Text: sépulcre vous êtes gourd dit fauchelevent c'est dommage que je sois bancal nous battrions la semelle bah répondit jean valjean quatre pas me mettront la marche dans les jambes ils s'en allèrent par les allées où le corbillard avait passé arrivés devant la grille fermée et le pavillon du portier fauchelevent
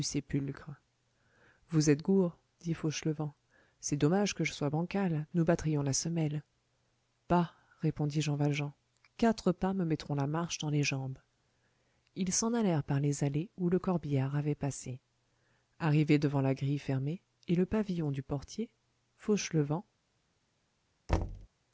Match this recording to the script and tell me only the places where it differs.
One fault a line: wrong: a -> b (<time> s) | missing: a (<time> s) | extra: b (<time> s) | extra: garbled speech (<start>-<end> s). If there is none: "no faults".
no faults